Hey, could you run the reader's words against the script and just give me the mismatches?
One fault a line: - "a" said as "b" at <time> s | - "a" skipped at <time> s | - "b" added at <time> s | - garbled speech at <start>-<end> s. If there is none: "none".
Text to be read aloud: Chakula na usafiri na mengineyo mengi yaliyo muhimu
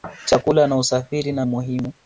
- "mengineyo mengi yaliyo" skipped at 1.4 s